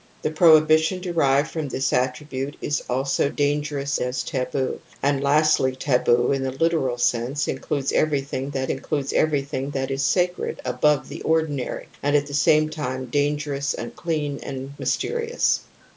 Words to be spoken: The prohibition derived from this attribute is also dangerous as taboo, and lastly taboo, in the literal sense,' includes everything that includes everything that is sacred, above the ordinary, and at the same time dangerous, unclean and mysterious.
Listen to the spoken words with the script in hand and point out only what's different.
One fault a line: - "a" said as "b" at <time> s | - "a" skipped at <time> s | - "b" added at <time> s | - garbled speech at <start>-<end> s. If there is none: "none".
none